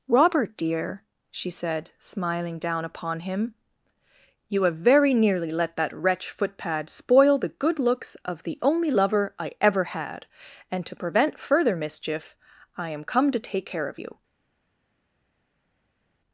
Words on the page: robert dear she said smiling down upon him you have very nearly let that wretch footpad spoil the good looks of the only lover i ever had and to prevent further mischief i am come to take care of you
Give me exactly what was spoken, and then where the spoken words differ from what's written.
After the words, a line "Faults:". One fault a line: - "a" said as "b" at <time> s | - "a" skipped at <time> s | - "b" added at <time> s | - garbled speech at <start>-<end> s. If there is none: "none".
robert dear she said smiling down upon him you have very nearly let that wretch footpad spoil the good looks of the only lover i ever had and to prevent further mischief i am come to take care of you
Faults:
none